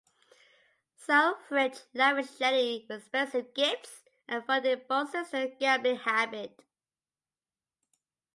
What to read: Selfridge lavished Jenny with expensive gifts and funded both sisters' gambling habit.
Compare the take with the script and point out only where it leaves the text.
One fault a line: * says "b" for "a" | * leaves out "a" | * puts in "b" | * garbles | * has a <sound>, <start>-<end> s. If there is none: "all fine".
all fine